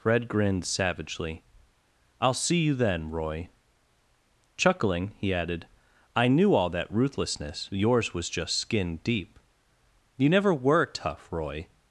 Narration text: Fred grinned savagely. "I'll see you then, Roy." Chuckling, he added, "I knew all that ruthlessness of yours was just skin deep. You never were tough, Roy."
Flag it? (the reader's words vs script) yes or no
yes